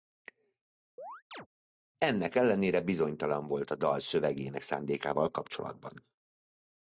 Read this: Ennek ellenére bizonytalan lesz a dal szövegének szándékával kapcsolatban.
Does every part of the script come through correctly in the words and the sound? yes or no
no